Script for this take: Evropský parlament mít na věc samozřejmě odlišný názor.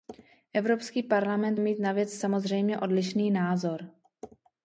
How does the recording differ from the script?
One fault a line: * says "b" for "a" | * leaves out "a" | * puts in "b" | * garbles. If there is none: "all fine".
all fine